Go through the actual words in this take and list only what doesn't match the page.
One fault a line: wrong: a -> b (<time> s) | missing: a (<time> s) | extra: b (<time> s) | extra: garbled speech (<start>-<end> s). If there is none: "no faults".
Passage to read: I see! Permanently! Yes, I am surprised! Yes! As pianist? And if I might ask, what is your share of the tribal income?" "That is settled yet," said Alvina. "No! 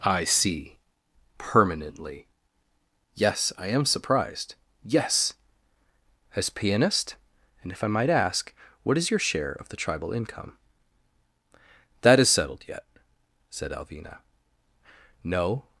no faults